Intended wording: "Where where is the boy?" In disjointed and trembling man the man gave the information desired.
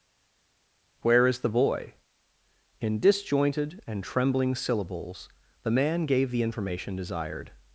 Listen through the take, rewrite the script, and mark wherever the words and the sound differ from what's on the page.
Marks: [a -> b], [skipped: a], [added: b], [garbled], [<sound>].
"Where [skipped: where] is the boy?" In disjointed and trembling [man -> syllables] the man gave the information desired.